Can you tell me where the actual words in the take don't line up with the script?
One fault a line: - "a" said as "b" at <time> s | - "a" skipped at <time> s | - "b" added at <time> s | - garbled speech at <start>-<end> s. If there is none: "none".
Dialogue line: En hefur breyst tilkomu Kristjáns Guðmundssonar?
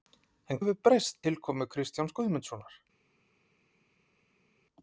none